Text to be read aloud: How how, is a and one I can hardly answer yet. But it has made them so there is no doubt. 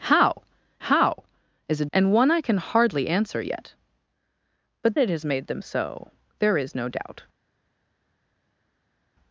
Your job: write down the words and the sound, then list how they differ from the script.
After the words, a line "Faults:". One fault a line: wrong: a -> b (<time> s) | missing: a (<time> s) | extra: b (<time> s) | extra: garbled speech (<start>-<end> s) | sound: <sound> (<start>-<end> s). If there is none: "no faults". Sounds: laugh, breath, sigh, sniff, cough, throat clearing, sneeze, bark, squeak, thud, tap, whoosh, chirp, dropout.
How how, is a and one I can hardly answer yet. But it has made them so there is no doubt.
Faults:
no faults